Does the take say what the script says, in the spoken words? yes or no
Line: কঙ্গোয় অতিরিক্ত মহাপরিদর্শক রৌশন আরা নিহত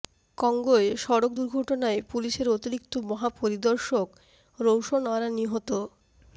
no